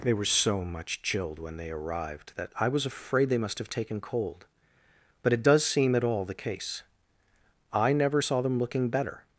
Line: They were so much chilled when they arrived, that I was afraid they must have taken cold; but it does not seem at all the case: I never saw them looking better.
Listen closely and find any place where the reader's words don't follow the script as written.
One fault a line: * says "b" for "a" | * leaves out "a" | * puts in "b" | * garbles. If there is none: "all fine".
* leaves out "not"